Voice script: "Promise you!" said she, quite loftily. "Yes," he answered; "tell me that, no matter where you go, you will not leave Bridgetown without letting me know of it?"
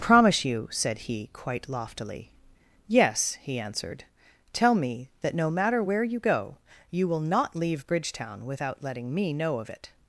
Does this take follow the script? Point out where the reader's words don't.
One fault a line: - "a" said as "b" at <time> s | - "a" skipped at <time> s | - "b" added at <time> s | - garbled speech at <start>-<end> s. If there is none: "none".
- "she" said as "he" at 1.0 s